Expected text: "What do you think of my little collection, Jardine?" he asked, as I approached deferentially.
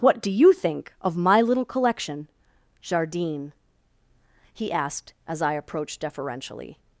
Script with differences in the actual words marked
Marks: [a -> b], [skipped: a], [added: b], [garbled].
"What do you think of my little collection, Jardine?" he asked, as I approached deferentially.